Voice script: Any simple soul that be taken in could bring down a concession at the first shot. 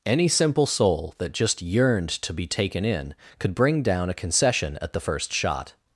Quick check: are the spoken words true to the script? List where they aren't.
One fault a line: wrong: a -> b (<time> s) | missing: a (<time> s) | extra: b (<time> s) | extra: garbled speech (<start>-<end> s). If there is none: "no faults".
extra: just yearned to (1.3 s)